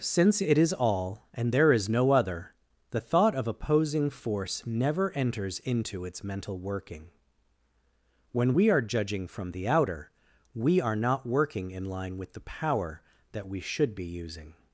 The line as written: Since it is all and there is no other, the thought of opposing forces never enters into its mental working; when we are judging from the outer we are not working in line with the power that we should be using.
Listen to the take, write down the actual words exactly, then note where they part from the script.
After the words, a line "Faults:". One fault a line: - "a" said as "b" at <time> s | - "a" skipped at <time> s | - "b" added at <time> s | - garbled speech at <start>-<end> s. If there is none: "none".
Since it is all and there is no other, the thought of opposing force never enters into its mental working; when we are judging from the outer we are not working in line with the power that we should be using.
Faults:
- "forces" said as "force" at 4.1 s